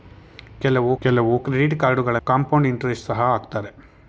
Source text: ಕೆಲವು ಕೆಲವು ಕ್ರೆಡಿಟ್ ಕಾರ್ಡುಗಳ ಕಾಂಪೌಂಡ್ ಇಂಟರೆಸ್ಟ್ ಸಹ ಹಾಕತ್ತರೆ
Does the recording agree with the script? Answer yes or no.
yes